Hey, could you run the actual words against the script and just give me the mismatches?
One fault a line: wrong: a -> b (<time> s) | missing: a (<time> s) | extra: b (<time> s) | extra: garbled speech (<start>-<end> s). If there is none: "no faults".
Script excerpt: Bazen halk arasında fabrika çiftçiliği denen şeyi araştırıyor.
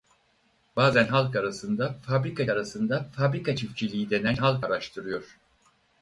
extra: arasında fabrika (2.5 s)
wrong: şeyi -> halk (4.4 s)